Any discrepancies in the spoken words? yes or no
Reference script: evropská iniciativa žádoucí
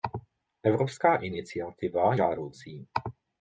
no